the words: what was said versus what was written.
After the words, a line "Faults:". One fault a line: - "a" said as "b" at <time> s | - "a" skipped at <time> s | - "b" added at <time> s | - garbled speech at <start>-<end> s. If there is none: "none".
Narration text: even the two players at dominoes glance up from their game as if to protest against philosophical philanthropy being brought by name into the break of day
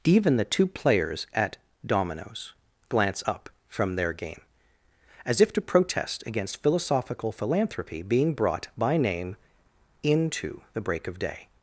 even the two players at dominoes glance up from their game as if to protest against philosophical philanthropy being brought by name into the break of day
Faults:
none